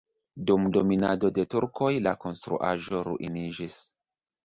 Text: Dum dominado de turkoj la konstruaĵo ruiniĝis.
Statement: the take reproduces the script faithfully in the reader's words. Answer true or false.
true